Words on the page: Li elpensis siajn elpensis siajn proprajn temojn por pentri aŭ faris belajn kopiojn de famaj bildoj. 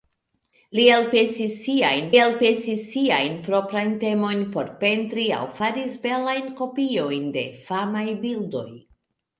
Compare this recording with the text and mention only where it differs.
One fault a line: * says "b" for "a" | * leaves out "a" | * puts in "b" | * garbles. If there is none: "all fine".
all fine